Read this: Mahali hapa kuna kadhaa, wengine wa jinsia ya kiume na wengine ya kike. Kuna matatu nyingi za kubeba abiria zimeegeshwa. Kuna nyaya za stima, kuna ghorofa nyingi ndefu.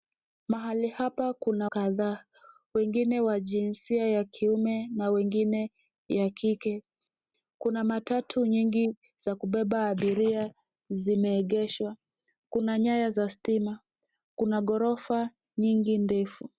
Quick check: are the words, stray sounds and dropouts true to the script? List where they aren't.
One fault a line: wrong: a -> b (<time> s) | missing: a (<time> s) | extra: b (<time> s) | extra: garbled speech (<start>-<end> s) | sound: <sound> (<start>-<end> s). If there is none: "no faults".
no faults